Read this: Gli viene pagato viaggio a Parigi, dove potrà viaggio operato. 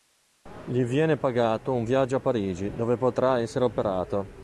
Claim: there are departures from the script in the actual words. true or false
true